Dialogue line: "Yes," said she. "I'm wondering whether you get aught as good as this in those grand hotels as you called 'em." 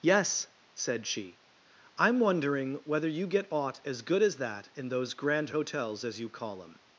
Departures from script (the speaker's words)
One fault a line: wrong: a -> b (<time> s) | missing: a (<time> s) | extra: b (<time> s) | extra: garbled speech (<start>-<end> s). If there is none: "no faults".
wrong: this -> that (4.4 s)
wrong: called -> call (6.3 s)